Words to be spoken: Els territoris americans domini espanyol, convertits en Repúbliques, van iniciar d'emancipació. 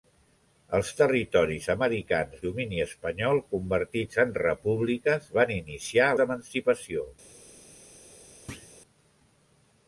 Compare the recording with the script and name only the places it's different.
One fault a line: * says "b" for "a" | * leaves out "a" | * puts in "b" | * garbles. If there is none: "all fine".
all fine